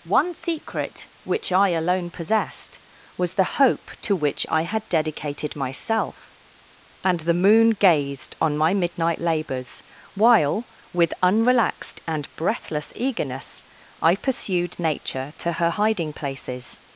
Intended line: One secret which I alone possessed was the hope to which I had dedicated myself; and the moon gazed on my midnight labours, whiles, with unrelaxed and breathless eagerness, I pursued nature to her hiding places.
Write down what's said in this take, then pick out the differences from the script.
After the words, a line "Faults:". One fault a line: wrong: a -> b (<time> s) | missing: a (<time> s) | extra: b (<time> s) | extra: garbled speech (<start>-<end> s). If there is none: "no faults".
One secret which I alone possessed was the hope to which I had dedicated myself; and the moon gazed on my midnight labours, while, with unrelaxed and breathless eagerness, I pursued nature to her hiding places.
Faults:
wrong: whiles -> while (10.1 s)